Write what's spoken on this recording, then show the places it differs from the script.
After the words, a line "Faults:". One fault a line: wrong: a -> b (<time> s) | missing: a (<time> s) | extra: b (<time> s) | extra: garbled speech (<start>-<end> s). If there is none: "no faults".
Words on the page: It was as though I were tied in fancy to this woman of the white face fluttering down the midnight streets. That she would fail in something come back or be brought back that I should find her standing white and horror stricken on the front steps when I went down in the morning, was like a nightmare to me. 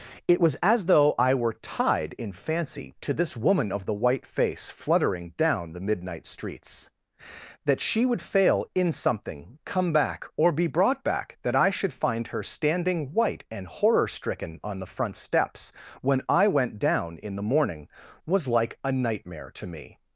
It was as though I were tied in fancy to this woman of the white face fluttering down the midnight streets. That she would fail in something come back or be brought back that I should find her standing white and horror stricken on the front steps when I went down in the morning, was like a nightmare to me.
Faults:
no faults